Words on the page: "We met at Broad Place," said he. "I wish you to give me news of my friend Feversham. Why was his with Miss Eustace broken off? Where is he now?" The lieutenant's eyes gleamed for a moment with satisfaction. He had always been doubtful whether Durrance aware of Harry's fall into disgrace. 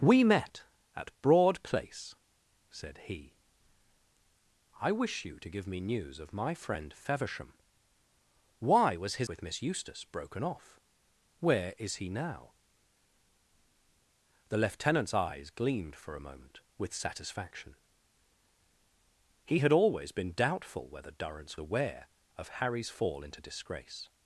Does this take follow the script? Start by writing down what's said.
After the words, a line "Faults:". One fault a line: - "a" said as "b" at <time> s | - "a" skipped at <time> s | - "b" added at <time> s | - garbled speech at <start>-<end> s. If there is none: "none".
"We met at Broad Place," said he. "I wish you to give me news of my friend Feversham. Why was his with Miss Eustace broken off? Where is he now?" The lieutenant's eyes gleamed for a moment with satisfaction. He had always been doubtful whether Durrance aware of Harry's fall into disgrace.
Faults:
none